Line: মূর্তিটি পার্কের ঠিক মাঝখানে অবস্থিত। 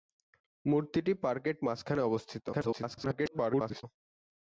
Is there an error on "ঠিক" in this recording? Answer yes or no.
yes